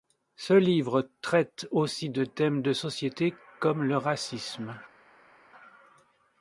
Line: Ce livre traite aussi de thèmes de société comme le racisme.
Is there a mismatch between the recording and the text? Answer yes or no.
no